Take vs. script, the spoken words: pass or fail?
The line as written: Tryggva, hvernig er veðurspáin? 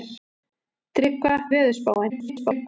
fail